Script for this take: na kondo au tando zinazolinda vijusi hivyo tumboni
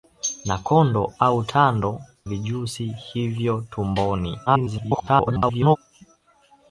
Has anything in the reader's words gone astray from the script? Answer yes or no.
yes